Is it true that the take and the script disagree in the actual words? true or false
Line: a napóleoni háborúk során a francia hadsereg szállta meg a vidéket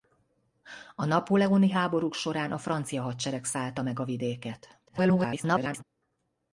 true